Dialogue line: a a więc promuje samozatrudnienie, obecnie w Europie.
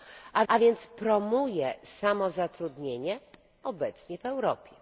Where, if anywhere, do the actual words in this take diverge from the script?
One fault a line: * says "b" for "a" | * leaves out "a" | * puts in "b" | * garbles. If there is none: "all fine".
all fine